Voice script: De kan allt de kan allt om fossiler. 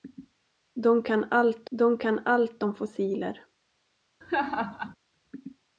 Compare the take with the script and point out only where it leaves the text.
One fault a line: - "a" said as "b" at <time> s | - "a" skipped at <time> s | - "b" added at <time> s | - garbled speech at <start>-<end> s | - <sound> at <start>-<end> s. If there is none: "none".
- laugh at 4.2-5.0 s